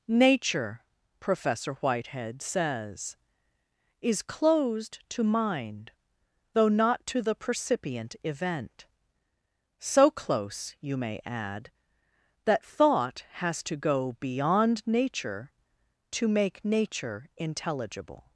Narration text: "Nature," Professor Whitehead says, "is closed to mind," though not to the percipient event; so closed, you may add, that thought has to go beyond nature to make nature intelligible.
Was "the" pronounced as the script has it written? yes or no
yes